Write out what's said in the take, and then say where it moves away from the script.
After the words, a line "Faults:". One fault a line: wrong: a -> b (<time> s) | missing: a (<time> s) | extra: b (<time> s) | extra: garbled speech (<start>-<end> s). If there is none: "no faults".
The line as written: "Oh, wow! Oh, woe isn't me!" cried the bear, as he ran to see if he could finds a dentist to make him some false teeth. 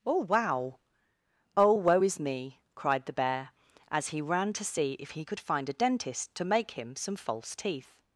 "Oh, wow! Oh, woe is me!" cried the bear, as he ran to see if he could find a dentist to make him some false teeth.
Faults:
wrong: isn't -> is (2.0 s)
wrong: finds -> find (5.4 s)